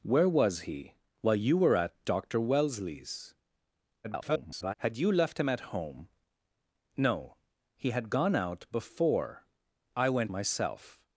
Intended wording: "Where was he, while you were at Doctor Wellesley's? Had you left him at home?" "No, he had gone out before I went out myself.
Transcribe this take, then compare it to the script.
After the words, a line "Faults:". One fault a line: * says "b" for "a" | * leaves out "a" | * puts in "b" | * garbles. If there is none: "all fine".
"Where was he, while you were at Doctor Wellesley's? [garbled] Had you left him at home?" "No, he had gone out before I went myself.
Faults:
* garbles
* leaves out "out"